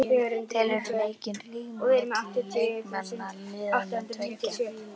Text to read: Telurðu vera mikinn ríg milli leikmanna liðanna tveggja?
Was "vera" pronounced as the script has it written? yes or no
no